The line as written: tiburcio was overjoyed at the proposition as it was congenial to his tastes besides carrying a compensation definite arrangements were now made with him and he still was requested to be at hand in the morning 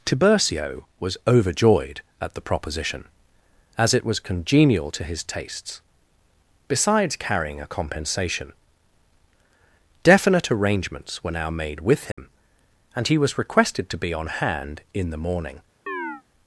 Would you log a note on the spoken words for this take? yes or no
yes